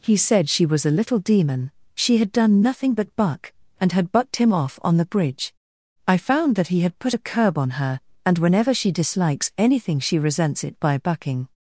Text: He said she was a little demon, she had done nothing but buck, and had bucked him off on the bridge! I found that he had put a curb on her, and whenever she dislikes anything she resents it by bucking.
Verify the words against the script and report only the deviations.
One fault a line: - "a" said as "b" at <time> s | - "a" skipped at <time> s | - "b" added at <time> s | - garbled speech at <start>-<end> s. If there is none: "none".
none